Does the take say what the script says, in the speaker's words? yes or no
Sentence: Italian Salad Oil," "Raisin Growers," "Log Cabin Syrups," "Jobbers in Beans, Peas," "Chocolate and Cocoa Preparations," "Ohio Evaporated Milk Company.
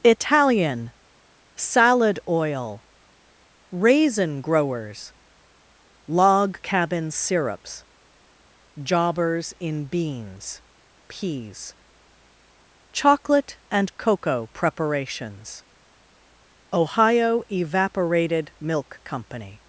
yes